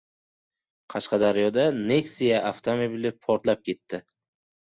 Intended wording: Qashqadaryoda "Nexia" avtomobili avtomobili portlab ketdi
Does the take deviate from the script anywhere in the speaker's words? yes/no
yes